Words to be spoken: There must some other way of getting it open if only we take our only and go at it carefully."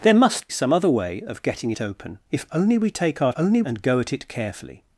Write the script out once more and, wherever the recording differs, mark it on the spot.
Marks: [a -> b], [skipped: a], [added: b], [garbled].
There must some other way of getting it open if only we take our only and go at it carefully."